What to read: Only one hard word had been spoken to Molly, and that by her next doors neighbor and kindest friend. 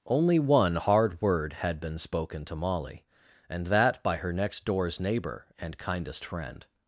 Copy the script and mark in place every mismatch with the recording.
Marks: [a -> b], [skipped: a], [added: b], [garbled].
Only one hard word had been spoken to Molly, and that by her next doors neighbor and kindest friend.